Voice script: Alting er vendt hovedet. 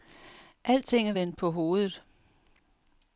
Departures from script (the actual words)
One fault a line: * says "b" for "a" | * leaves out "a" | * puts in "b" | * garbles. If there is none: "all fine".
* puts in "på"